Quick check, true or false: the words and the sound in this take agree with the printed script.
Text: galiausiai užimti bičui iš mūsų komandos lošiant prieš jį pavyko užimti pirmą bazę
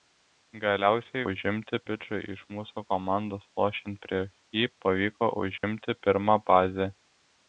false